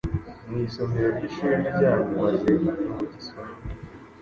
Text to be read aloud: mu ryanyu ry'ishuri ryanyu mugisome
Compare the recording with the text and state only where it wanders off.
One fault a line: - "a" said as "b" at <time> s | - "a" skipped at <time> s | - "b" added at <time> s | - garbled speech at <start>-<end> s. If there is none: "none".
- "ryanyu" said as "isomero" at 0.7 s
- "maze" added at 2.2 s